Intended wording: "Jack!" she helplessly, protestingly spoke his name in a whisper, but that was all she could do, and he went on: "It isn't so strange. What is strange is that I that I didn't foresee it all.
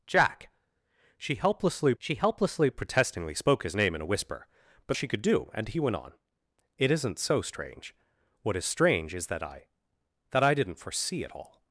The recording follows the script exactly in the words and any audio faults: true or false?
false